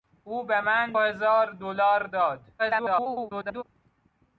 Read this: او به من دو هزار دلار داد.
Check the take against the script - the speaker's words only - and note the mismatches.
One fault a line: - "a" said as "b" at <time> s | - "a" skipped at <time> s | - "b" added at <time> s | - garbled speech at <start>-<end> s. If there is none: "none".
- "دو" skipped at 0.9 s
- garbled speech at 2.6-3.6 s